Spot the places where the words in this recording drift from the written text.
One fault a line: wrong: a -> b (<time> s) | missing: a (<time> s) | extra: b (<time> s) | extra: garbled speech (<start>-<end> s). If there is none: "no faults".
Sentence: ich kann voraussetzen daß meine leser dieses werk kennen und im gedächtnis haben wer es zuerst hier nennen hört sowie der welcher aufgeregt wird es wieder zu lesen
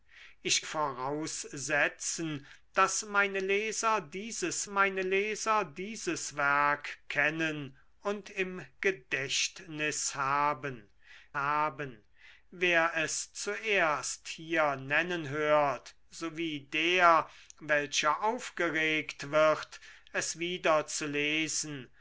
missing: kann (0.6 s)
extra: meine leser dieses (4.7 s)
extra: haben (11.3 s)